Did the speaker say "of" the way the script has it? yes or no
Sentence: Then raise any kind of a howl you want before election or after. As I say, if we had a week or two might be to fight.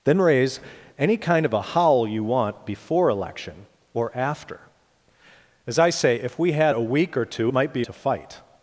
yes